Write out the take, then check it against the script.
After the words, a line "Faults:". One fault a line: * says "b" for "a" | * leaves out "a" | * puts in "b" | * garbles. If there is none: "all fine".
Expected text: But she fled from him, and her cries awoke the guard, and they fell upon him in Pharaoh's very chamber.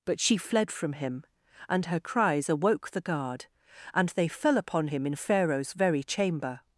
But she fled from him, and her cries awoke the guard, and they fell upon him in Pharaoh's very chamber.
Faults:
all fine